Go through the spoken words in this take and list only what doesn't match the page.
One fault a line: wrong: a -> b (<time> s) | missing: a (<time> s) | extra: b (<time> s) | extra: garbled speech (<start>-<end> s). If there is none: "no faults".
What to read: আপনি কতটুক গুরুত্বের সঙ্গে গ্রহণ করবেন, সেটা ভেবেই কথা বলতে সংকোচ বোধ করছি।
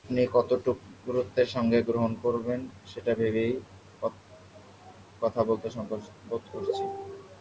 no faults